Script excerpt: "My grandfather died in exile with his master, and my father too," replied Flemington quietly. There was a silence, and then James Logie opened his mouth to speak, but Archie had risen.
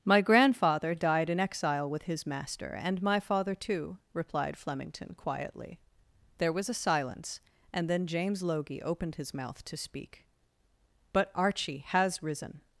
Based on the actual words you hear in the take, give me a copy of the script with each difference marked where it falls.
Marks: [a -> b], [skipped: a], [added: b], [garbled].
"My grandfather died in exile with his master, and my father too," replied Flemington quietly. There was a silence, and then James Logie opened his mouth to speak, but Archie [had -> has] risen.